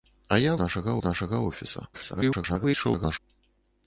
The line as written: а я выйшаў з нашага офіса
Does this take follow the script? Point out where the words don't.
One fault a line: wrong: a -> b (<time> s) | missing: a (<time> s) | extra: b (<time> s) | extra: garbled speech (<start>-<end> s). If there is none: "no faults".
wrong: выйшаў -> нашага (0.6 s)
extra: garbled speech (1.9-3.2 s)